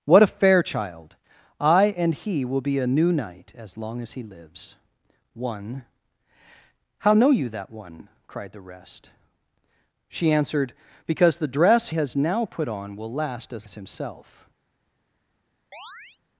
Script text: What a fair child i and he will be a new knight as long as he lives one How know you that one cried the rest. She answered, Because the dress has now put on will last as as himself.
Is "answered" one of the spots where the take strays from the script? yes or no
no